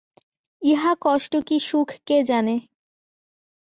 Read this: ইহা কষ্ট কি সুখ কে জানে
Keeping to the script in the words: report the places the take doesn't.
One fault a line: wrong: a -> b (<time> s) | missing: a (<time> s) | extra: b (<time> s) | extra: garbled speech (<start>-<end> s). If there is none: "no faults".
no faults